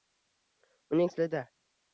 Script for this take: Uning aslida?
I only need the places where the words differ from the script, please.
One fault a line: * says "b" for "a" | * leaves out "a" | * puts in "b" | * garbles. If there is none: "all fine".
all fine